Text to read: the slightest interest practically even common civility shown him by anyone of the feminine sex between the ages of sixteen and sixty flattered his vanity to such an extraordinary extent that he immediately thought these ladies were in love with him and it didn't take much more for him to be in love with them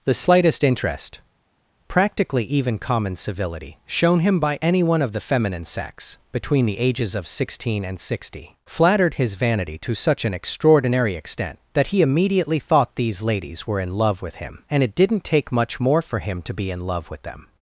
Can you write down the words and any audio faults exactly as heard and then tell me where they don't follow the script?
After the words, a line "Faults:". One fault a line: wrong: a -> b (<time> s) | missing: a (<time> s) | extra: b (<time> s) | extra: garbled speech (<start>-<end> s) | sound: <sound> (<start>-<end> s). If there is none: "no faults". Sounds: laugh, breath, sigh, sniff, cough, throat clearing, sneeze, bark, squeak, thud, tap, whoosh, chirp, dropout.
the slightest interest practically even common civility shown him by anyone of the feminine sex between the ages of sixteen and sixty flattered his vanity to such an extraordinary extent that he immediately thought these ladies were in love with him and it didn't take much more for him to be in love with them
Faults:
no faults